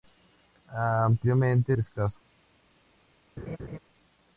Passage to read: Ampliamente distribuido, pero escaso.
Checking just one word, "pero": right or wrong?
wrong